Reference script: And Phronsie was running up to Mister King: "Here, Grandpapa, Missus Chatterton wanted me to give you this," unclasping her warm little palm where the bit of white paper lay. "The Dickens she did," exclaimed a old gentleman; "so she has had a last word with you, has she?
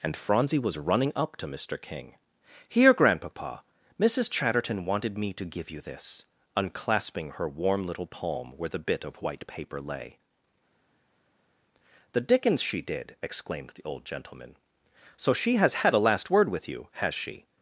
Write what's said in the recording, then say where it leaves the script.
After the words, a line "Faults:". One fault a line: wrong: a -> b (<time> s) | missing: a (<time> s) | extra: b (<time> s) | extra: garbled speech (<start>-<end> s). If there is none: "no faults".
And Phronsie was running up to Mister King: "Here, Grandpapa, Missus Chatterton wanted me to give you this," unclasping her warm little palm where the bit of white paper lay. "The Dickens she did," exclaimed the old gentleman; "so she has had a last word with you, has she?
Faults:
wrong: a -> the (13.7 s)